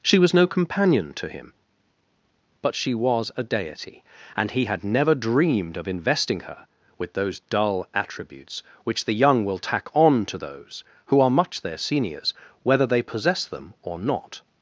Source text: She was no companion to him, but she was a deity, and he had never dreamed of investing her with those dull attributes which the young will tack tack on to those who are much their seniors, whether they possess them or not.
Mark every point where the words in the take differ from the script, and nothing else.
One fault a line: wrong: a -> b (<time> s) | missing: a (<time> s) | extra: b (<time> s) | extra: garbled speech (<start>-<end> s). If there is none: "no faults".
missing: tack (9.9 s)